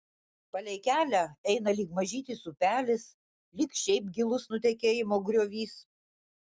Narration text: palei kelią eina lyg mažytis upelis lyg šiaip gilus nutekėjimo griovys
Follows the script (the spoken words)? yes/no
yes